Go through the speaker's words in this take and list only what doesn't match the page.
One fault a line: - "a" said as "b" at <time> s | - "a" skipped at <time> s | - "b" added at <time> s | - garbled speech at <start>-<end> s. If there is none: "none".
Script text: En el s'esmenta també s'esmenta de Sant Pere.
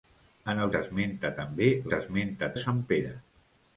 none